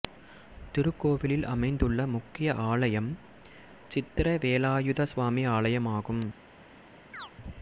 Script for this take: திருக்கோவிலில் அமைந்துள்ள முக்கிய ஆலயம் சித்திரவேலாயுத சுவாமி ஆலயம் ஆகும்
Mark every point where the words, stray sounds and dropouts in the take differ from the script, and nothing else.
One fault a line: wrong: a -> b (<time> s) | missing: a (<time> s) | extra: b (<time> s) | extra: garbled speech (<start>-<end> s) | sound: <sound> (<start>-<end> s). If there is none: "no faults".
sound: chirp (7.1-7.3 s)